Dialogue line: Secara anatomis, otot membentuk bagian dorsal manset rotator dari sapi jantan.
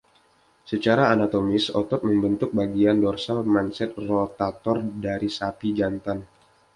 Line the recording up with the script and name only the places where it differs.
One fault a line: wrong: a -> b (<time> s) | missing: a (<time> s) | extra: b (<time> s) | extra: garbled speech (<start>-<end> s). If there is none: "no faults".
no faults